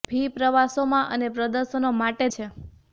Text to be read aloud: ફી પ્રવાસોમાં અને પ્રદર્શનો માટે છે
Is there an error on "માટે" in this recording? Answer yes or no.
no